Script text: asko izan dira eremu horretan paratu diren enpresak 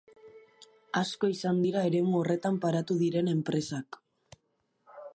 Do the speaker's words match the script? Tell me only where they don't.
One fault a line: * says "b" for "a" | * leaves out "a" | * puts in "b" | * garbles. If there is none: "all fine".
all fine